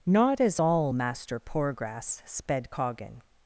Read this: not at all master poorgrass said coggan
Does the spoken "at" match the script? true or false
false